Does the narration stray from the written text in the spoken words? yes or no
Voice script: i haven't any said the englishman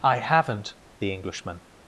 yes